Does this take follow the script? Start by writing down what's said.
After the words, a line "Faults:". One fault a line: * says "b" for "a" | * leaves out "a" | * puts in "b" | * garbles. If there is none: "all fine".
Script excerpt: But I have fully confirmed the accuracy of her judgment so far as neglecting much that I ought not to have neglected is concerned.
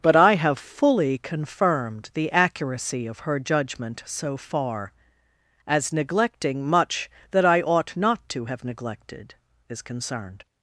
But I have fully confirmed the accuracy of her judgment so far as neglecting much that I ought not to have neglected is concerned.
Faults:
all fine